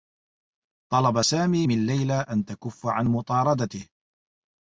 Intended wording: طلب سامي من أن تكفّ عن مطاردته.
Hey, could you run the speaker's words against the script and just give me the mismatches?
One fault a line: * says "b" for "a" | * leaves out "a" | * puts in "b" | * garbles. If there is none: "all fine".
* puts in "ليلى"